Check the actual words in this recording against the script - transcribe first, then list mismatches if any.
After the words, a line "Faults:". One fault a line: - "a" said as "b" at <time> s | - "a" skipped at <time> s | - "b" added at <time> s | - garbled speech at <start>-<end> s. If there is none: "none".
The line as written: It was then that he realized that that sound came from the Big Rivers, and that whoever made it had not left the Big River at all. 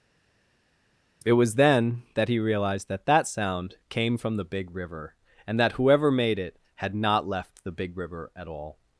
It was then that he realized that that sound came from the Big River, and that whoever made it had not left the Big River at all.
Faults:
- "Rivers" said as "River" at 4.7 s